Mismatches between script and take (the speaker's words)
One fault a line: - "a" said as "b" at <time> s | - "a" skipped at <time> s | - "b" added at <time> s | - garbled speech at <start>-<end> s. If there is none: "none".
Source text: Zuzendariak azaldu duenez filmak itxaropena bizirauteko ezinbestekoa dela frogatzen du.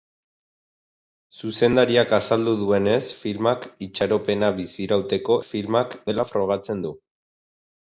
- "ezinbestekoa" said as "filmak" at 5.5 s